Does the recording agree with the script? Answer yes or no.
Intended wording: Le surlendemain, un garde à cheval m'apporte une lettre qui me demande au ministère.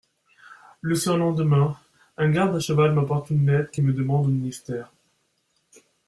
yes